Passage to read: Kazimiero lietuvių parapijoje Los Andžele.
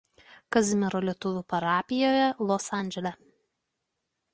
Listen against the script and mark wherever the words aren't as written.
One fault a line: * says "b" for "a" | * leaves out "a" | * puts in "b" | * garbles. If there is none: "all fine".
all fine